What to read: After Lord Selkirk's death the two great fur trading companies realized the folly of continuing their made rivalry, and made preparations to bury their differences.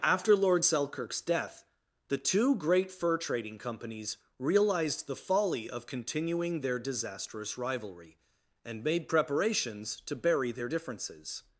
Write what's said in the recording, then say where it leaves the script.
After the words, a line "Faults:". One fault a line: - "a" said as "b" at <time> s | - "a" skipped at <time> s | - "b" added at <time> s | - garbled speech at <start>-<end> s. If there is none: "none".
After Lord Selkirk's death the two great fur trading companies realized the folly of continuing their disastrous rivalry, and made preparations to bury their differences.
Faults:
- "made" said as "disastrous" at 6.8 s